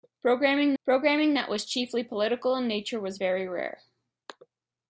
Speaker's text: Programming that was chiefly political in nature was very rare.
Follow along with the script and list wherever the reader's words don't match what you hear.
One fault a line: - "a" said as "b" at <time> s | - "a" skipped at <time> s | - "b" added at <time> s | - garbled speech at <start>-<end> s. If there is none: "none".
- "programming" added at 0.8 s